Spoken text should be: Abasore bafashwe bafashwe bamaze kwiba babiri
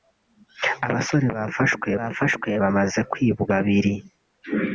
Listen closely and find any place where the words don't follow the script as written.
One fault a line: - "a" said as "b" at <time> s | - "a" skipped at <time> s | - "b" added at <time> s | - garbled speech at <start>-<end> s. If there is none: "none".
none